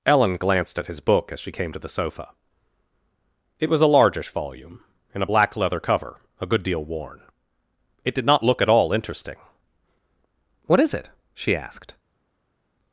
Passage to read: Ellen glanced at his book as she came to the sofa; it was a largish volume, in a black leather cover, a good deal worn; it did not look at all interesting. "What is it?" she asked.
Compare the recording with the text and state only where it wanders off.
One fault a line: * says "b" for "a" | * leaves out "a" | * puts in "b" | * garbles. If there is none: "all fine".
all fine